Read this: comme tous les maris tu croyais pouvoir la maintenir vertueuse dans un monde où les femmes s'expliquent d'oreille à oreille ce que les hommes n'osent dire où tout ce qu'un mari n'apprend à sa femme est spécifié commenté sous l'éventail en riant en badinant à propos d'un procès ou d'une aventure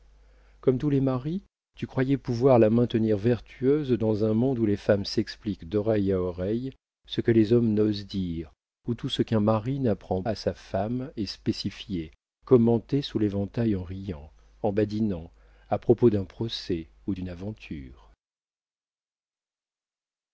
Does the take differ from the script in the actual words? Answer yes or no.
no